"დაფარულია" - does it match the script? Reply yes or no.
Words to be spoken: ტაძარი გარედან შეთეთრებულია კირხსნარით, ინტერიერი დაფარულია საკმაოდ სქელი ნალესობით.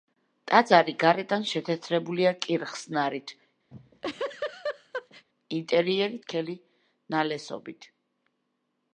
no